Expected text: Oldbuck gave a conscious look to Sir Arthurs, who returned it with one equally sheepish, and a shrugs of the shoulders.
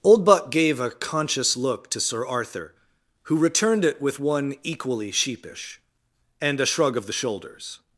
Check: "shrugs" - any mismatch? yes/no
yes